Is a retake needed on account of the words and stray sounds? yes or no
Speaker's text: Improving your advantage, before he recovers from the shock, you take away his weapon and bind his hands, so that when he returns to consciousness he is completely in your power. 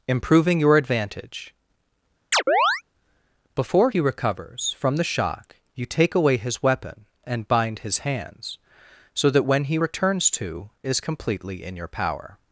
yes